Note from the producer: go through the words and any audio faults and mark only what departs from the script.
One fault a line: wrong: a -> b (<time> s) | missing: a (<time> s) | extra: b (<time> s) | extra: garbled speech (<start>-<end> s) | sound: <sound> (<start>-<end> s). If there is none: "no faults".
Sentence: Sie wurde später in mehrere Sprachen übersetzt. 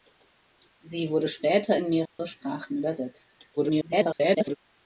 sound: dropout (2.1-2.2 s)
extra: garbled speech (3.6-4.6 s)